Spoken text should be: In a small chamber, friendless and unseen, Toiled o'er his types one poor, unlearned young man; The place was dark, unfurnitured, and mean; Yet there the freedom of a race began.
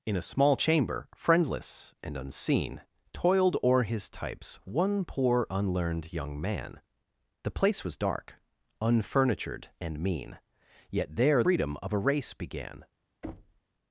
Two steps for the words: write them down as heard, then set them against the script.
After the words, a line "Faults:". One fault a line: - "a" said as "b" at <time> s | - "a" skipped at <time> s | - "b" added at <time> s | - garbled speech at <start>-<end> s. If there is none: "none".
In a small chamber, friendless and unseen, Toiled o'er his types one poor, unlearned young man; The place was dark, unfurnitured, and mean; Yet there freedom of a race began.
Faults:
- "the" skipped at 11.4 s